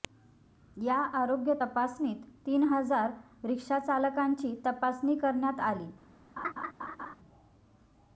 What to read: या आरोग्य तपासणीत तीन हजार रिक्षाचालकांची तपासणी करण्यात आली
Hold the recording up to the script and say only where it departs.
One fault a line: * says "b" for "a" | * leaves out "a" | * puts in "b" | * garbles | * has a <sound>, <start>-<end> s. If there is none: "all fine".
* has a laugh, 6.4-7.2 s